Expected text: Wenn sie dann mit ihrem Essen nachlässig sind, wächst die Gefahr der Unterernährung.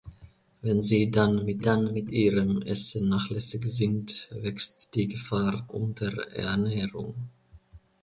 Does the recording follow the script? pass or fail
fail